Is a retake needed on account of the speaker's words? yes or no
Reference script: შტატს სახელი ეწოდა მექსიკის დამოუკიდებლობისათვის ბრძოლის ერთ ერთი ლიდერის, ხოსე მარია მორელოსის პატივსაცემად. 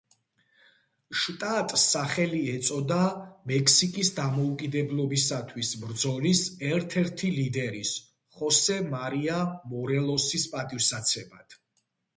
no